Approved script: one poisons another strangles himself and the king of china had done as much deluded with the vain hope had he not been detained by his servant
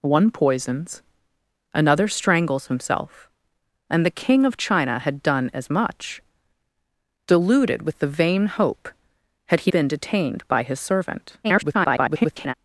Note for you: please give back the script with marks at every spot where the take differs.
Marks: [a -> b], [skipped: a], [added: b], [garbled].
one poisons another strangles himself and the king of china had done as much deluded with the vain hope had he [skipped: not] been detained by his servant [garbled]